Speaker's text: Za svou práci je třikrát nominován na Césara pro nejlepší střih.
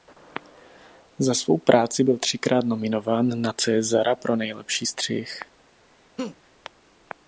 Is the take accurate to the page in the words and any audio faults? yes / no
no